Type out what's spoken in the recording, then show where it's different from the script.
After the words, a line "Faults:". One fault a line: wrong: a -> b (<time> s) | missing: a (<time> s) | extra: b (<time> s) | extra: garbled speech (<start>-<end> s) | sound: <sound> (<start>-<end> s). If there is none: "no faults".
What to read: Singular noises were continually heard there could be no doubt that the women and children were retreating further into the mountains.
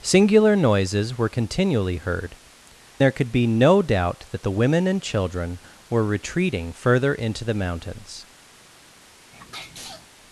Singular noises were continually heard there could be no doubt that the women and children were retreating further into the mountains.
Faults:
sound: sneeze (9.3-10.1 s)